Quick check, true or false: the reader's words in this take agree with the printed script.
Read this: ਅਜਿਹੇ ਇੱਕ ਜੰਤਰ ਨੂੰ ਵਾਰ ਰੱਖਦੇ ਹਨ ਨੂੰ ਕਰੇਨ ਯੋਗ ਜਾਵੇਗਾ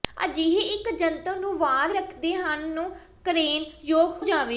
true